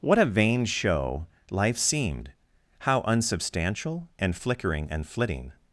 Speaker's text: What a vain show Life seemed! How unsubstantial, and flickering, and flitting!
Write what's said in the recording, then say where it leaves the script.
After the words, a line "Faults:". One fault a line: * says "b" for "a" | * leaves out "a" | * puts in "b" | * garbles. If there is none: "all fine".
What a vain show Life seemed! How unsubstantial, and flickering, and flitting!
Faults:
all fine